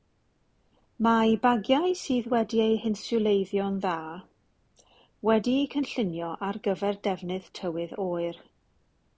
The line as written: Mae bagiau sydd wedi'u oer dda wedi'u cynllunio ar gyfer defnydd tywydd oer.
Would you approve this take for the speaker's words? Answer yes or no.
no